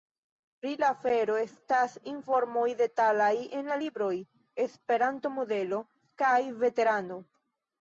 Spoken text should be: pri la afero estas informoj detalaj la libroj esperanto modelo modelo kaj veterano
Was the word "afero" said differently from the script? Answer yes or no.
no